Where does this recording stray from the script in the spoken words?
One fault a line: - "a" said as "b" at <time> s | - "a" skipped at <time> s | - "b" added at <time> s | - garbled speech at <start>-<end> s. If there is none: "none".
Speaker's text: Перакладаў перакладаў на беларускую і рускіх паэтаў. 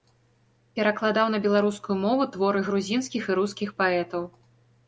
- "перакладаў" skipped at 1.3 s
- "мову творы грузінскіх" added at 2.0 s